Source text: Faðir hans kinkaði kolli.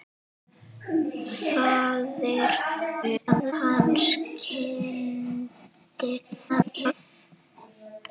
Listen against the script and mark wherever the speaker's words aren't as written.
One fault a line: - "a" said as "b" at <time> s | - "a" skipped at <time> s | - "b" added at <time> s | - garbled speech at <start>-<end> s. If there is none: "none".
- garbled speech at 3.0-3.5 s
- garbled speech at 6.5-6.9 s